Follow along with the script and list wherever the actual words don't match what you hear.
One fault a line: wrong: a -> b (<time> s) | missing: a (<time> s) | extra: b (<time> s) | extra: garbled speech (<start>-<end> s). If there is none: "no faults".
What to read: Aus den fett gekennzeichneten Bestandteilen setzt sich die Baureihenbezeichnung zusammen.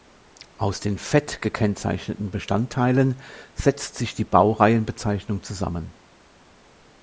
no faults